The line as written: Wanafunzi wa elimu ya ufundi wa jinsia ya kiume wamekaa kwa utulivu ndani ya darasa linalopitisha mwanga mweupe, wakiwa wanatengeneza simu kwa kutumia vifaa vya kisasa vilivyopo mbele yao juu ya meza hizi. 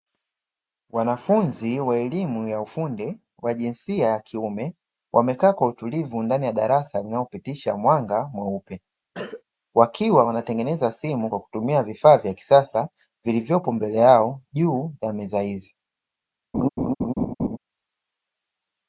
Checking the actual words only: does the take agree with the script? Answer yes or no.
yes